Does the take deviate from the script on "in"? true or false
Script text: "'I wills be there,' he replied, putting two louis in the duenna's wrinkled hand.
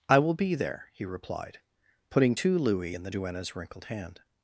false